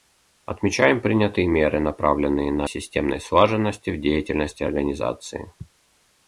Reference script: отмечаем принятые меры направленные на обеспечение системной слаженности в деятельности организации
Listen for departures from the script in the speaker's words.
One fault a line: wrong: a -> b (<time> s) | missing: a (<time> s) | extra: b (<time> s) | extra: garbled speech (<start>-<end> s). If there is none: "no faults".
missing: обеспечение (2.6 s)